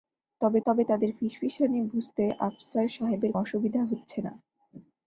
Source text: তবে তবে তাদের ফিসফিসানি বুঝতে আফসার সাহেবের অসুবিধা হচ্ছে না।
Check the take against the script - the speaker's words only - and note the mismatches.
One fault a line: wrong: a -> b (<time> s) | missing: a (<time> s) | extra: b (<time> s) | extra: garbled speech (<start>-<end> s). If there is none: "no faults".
no faults